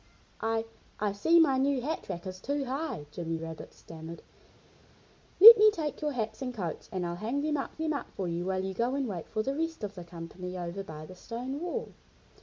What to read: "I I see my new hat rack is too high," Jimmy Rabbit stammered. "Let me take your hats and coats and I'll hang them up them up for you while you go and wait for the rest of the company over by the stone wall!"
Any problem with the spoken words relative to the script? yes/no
no